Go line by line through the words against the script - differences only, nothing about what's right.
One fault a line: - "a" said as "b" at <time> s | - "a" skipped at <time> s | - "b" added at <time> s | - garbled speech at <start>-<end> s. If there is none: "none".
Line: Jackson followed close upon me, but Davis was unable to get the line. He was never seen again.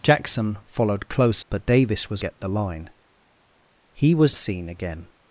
- "upon me" skipped at 1.4 s
- "unable to" skipped at 2.2 s
- "never" skipped at 4.3 s